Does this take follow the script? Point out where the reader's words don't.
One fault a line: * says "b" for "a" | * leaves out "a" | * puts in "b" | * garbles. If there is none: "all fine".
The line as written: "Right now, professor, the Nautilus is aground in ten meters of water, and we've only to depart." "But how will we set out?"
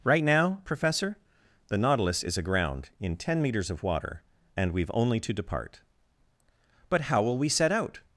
all fine